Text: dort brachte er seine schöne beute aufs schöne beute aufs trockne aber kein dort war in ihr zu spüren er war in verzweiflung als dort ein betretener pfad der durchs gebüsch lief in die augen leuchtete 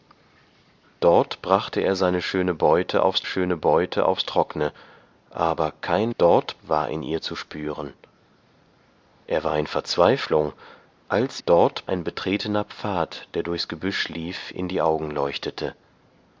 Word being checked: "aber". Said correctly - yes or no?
yes